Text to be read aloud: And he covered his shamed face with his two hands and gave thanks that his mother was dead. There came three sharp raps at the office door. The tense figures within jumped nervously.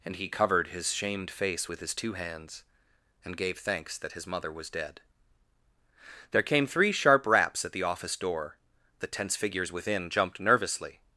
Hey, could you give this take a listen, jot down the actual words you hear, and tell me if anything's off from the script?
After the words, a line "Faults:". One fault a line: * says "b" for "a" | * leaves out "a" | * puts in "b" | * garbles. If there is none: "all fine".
And he covered his shamed face with his two hands and gave thanks that his mother was dead. There came three sharp raps at the office door. The tense figures within jumped nervously.
Faults:
all fine